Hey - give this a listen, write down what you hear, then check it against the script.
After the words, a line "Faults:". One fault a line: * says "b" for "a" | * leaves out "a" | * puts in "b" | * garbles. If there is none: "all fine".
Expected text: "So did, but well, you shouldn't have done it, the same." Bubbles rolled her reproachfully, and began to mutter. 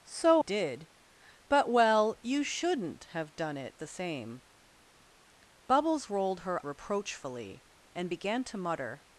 "So did, but well, you shouldn't have done it, the same." Bubbles rolled her reproachfully, and began to mutter.
Faults:
all fine